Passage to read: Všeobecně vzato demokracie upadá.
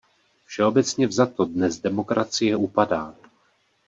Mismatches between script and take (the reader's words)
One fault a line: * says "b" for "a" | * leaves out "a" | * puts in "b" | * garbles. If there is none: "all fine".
* puts in "dnes"